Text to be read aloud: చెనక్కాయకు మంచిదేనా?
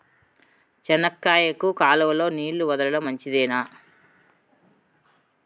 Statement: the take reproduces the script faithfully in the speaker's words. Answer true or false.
false